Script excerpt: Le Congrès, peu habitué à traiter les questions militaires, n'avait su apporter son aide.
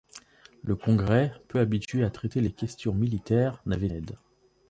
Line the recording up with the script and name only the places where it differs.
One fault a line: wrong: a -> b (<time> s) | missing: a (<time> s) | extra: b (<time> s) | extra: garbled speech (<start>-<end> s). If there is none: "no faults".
missing: su apporter son (3.9 s)